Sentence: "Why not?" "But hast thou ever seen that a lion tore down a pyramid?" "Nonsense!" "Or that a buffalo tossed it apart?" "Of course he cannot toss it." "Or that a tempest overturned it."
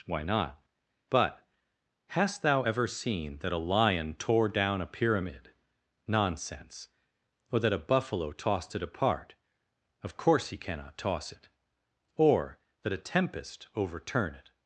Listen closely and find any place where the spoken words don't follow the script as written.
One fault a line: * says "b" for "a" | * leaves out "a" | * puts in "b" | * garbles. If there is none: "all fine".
* says "overturn" for "overturned"